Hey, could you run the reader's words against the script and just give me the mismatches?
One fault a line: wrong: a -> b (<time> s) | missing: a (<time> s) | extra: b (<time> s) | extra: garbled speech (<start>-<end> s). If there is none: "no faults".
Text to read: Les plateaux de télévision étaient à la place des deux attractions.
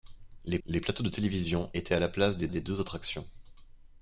extra: les (0.7 s)
extra: des (2.5 s)